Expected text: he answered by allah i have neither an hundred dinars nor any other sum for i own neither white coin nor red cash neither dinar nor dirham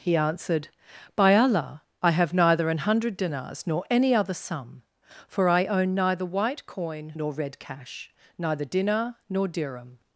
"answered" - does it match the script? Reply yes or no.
yes